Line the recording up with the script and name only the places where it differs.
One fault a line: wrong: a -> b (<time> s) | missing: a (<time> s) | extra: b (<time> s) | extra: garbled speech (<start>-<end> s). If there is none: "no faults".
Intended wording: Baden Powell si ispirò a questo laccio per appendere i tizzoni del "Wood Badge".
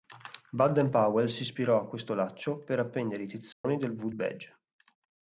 no faults